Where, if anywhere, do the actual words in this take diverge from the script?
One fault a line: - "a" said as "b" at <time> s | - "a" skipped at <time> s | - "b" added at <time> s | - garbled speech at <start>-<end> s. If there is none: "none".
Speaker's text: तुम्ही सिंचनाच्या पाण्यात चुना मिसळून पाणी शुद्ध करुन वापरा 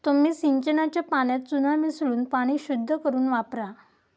none